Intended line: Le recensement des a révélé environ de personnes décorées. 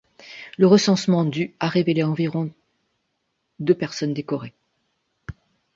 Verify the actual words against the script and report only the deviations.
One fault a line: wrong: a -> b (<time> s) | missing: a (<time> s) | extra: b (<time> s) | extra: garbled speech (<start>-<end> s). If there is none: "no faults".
wrong: des -> du (1.2 s)